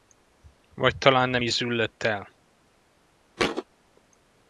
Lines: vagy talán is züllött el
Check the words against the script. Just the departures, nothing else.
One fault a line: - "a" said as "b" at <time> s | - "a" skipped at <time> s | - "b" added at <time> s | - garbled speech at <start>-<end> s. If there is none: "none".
- "nem" added at 1.3 s